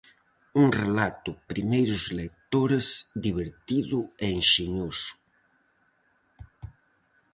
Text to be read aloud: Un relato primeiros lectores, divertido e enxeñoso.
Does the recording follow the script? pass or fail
pass